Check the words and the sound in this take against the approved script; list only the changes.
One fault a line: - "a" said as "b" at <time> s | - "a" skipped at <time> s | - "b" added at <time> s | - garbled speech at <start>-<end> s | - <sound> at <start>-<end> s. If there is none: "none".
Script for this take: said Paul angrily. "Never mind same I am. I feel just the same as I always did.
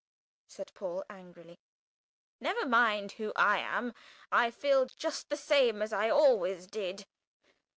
- "same" said as "who" at 3.1 s